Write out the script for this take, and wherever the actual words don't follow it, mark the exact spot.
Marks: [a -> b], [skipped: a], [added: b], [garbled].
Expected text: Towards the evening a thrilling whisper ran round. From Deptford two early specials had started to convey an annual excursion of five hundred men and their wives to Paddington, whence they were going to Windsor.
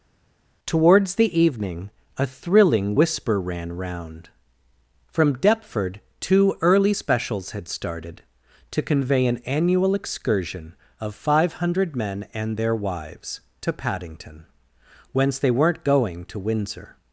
Towards the evening a thrilling whisper ran round. From Deptford two early specials had started to convey an annual excursion of five hundred men and their wives to Paddington, whence they [were -> weren't] going to Windsor.